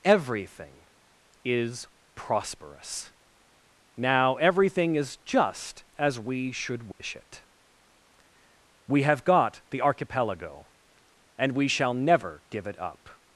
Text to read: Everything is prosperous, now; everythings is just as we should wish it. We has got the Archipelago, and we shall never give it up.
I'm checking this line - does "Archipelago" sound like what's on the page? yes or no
yes